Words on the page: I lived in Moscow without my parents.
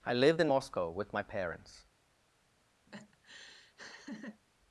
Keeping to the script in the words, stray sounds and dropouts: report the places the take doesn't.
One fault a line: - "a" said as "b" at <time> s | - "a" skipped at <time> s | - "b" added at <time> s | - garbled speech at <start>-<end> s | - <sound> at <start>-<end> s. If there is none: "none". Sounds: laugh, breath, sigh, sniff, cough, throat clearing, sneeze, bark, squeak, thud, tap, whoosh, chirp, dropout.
- "without" said as "with" at 0.9 s
- laugh at 2.9-4.4 s